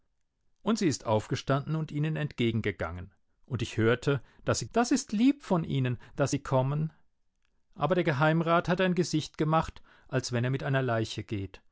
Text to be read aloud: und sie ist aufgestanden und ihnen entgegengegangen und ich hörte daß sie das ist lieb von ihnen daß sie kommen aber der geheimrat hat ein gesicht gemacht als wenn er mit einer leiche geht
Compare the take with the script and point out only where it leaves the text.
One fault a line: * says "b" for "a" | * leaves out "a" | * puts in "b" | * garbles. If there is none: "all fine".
all fine